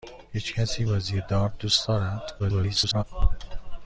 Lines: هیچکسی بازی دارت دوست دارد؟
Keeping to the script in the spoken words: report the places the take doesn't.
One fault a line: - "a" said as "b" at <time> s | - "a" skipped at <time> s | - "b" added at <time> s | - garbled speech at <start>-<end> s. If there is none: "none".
- garbled speech at 2.4-3.0 s